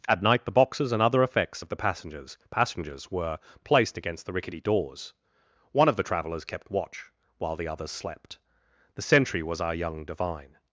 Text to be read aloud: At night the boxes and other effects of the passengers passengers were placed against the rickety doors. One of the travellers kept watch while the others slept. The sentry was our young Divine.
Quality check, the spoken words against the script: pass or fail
pass